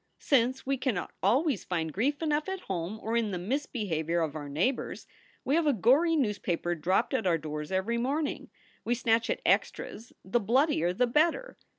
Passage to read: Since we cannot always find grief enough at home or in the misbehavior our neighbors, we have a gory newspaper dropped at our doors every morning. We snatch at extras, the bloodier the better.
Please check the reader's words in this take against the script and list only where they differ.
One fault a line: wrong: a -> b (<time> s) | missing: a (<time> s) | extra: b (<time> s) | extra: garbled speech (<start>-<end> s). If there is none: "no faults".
extra: of (4.2 s)